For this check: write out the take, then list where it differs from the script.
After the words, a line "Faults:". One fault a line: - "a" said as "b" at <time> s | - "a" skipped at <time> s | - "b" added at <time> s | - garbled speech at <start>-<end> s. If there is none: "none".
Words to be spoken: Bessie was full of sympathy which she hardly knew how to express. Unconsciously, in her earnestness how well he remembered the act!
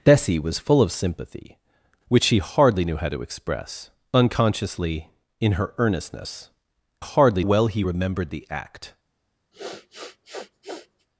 Bessie was full of sympathy which she hardly knew how to express. Unconsciously, in her earnestness hardly well he remembered the act!
Faults:
- "how" said as "hardly" at 7.0 s